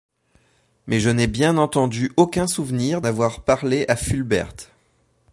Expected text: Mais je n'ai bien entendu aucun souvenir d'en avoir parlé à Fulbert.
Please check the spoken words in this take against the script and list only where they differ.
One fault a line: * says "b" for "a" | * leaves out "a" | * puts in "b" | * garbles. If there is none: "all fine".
* leaves out "d'en"